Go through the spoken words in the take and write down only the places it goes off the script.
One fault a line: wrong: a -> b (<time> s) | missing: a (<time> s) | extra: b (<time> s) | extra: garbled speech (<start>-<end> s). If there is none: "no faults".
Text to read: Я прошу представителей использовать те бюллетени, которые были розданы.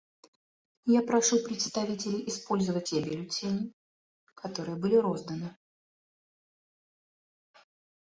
no faults